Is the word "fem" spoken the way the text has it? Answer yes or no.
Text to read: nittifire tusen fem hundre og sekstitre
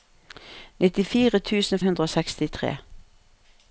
no